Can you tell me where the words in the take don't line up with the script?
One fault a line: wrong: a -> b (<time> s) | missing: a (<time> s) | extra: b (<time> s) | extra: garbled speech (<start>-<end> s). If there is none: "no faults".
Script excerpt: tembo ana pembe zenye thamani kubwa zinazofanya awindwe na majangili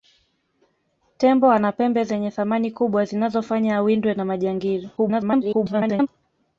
extra: garbled speech (5.0-6.1 s)